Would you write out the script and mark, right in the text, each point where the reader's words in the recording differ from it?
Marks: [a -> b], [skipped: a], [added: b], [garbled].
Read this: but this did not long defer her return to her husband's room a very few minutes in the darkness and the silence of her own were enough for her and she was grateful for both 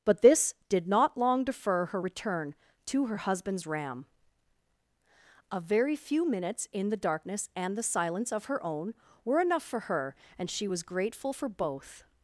but this did not long defer her return to her husband's [room -> ram] a very few minutes in the darkness and the silence of her own were enough for her and she was grateful for both